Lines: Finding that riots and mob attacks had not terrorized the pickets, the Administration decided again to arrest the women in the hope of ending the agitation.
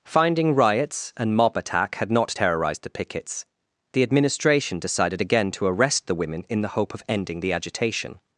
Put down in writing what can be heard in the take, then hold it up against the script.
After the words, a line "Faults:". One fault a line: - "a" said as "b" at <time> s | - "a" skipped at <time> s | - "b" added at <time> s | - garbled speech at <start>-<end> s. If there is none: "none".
Finding riots and mob attack had not terrorized the pickets, the Administration decided again to arrest the women in the hope of ending the agitation.
Faults:
- "that" skipped at 0.5 s
- "attacks" said as "attack" at 1.6 s